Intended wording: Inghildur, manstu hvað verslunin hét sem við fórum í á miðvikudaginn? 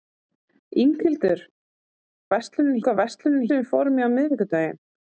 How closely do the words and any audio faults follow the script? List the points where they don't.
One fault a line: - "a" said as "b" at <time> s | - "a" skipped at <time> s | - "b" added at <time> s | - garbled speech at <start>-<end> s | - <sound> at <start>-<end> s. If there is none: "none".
- "manstu" said as "verslunin" at 2.3 s
- "hét" skipped at 3.5 s